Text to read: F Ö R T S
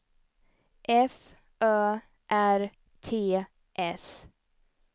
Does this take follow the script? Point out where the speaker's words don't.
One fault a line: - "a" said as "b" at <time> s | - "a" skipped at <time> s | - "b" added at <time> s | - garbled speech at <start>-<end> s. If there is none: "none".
none